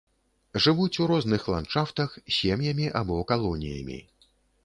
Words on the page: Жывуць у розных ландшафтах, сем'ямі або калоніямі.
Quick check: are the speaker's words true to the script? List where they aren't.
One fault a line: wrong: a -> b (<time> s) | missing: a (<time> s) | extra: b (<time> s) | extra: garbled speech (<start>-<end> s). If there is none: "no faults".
no faults